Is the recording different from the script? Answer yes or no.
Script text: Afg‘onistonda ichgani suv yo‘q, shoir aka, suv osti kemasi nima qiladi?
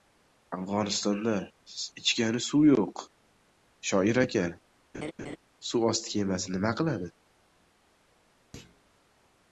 no